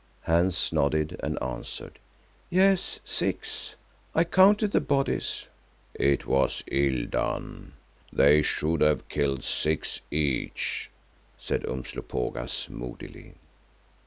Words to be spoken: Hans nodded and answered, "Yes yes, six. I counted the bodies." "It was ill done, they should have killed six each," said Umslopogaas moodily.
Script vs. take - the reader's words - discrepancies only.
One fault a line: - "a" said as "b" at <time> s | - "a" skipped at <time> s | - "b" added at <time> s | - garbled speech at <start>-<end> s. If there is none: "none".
- "yes" skipped at 3.0 s